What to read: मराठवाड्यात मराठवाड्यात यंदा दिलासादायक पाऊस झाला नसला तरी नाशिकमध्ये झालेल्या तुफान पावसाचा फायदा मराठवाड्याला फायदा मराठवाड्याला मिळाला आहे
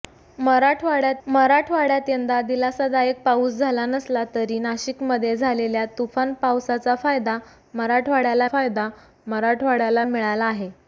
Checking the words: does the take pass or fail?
pass